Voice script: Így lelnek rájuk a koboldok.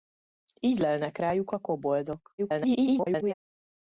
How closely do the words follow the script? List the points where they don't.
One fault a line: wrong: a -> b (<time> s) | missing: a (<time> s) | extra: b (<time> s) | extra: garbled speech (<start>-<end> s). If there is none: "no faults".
extra: garbled speech (2.4-3.3 s)